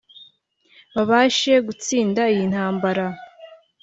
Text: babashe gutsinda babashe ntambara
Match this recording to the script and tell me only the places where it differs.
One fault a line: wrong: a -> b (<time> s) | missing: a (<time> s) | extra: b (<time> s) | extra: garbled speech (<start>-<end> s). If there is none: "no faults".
wrong: babashe -> iyi (2.3 s)